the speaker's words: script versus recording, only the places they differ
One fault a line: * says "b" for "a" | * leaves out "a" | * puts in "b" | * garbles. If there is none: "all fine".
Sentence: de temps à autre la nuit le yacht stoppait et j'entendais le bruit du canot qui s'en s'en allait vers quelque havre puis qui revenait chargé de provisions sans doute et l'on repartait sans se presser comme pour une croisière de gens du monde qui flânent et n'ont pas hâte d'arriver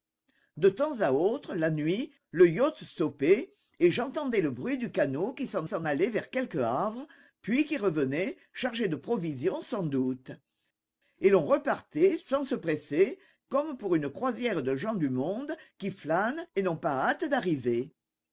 all fine